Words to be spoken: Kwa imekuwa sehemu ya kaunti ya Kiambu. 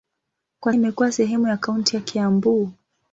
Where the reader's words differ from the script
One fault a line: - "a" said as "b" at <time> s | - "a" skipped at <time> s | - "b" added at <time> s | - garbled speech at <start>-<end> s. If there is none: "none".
none